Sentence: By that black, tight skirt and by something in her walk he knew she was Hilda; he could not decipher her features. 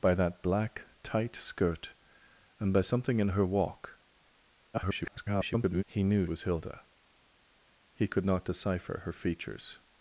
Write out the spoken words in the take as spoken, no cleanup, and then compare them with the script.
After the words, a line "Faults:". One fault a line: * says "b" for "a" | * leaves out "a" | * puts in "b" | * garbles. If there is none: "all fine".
By that black, tight skirt and by something in her walk [garbled] he knew was Hilda; he could not decipher her features.
Faults:
* garbles
* leaves out "she"